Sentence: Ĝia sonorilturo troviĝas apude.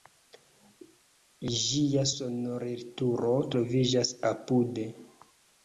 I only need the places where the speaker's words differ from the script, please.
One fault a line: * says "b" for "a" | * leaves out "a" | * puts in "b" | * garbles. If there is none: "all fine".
all fine